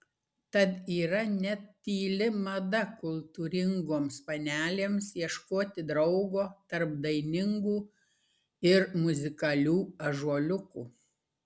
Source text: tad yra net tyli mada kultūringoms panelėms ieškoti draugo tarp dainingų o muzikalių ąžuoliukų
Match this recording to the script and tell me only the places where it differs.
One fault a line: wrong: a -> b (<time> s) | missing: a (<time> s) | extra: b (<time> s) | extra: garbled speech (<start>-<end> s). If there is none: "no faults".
wrong: o -> ir (8.7 s)